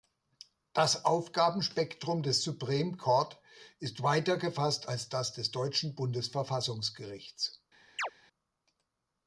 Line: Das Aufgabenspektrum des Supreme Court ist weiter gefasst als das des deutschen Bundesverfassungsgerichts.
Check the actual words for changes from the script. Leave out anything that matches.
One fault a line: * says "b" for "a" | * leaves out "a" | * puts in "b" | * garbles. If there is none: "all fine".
all fine